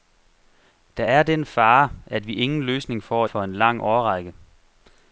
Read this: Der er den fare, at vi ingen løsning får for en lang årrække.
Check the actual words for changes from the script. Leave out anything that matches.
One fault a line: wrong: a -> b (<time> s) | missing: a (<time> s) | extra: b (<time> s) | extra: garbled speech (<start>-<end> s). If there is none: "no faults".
no faults